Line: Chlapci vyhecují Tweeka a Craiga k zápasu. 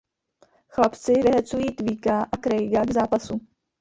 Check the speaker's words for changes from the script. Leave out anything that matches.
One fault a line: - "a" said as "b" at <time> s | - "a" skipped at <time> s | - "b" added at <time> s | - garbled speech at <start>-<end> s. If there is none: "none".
none